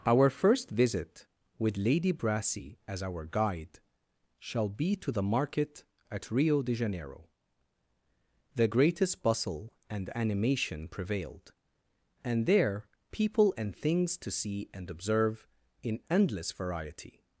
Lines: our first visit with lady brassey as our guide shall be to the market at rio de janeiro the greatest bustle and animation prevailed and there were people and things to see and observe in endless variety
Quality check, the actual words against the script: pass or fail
fail